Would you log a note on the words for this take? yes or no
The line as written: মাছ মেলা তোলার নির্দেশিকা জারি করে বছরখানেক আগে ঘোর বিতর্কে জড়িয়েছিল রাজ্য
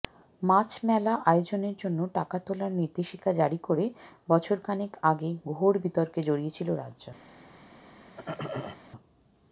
yes